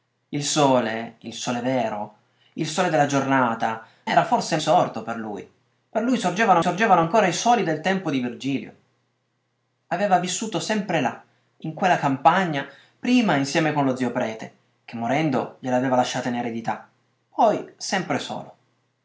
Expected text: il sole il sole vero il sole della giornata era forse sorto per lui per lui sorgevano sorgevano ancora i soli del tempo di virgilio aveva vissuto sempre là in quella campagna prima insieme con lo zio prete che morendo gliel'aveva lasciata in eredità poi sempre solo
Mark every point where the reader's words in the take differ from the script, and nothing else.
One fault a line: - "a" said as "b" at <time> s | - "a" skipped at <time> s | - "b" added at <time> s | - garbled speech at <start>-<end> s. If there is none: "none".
none